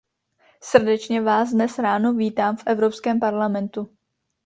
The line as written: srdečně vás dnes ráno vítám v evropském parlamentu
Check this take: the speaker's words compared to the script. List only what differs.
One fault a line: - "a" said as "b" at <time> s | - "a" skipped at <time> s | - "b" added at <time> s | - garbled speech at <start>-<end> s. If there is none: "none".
none